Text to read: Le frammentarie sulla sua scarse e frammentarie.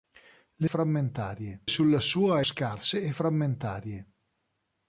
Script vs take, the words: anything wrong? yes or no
no